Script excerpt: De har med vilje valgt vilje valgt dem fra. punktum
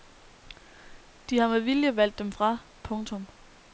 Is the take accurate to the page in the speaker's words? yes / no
no